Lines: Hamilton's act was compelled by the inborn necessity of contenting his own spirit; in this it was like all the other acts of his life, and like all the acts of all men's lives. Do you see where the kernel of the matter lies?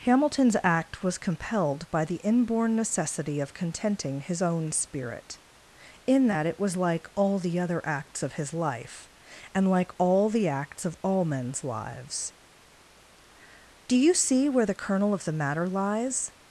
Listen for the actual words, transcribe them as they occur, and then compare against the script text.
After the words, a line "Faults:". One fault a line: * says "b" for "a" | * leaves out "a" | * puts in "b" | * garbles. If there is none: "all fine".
Hamilton's act was compelled by the inborn necessity of contenting his own spirit; in that it was like all the other acts of his life, and like all the acts of all men's lives. Do you see where the kernel of the matter lies?
Faults:
* says "that" for "this"